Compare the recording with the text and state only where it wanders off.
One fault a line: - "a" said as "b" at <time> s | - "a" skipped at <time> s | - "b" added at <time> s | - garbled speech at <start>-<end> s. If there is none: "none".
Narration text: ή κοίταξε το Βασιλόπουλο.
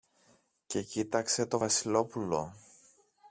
- "ή" said as "και" at 0.7 s